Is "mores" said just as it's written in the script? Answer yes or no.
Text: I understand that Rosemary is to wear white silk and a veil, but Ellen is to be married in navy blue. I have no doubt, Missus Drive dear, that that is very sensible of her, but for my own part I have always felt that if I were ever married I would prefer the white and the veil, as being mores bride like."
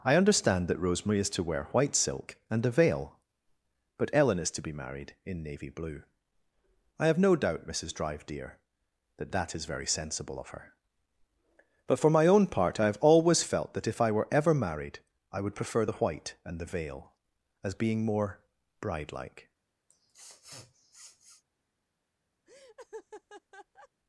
no